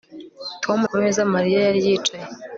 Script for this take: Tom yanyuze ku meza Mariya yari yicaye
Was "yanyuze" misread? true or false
true